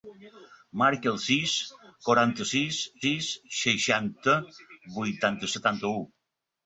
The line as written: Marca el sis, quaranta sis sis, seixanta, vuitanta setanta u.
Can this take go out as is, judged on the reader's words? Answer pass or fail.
pass